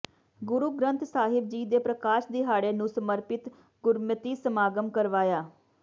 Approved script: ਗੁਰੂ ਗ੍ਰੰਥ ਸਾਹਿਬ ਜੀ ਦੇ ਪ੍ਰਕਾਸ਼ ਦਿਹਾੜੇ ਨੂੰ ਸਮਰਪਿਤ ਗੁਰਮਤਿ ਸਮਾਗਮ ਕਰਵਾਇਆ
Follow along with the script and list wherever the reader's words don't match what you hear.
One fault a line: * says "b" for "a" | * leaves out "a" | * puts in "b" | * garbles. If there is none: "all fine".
all fine